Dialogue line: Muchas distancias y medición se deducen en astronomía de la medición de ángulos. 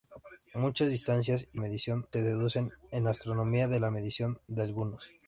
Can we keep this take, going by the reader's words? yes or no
yes